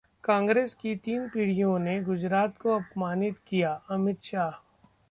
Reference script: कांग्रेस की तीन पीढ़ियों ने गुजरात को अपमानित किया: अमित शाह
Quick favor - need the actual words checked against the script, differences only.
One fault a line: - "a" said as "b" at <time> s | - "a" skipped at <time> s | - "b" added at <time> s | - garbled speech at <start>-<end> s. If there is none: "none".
none